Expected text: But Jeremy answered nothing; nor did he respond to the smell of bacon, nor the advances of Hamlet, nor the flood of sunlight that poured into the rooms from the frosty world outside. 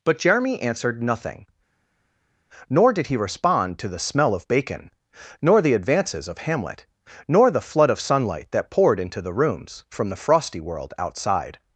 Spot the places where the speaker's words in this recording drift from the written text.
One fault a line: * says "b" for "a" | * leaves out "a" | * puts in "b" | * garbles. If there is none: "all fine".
all fine